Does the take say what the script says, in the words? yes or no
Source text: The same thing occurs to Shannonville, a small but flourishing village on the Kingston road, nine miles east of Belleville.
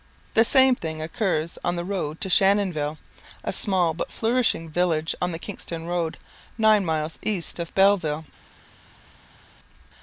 no